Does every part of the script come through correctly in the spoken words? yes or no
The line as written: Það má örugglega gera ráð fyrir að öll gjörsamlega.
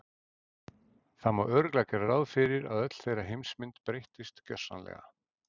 no